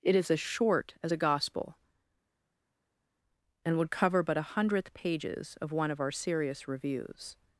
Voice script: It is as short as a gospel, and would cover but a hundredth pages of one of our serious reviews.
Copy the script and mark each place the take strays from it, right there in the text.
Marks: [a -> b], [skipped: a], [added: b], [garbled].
It is as short as a gospel, and would cover but a hundredth pages of one of our serious reviews.